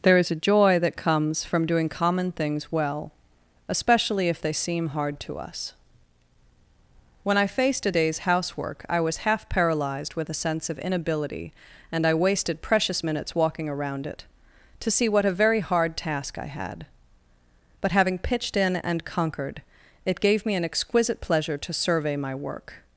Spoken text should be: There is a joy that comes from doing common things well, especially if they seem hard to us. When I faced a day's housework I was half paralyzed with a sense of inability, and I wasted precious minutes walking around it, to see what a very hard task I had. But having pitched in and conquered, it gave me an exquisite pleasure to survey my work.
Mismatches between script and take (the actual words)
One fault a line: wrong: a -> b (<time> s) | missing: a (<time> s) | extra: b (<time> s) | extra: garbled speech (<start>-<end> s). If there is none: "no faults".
no faults